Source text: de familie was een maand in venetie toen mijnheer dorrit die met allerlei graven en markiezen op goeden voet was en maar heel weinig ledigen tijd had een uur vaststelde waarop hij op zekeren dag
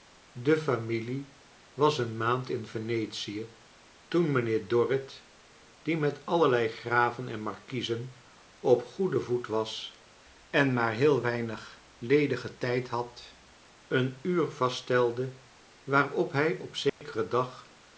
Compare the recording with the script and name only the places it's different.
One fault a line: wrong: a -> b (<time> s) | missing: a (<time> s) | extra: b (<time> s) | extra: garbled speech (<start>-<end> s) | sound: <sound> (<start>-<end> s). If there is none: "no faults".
sound: dropout (16.9-17.0 s)